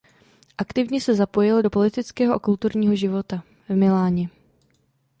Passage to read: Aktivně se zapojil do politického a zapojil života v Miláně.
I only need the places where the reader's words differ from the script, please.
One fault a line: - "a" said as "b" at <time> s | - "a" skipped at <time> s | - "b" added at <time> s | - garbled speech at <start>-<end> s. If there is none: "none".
- "zapojil" said as "kulturního" at 2.4 s